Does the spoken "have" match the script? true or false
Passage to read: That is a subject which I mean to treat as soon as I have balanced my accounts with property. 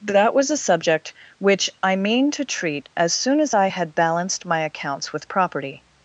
false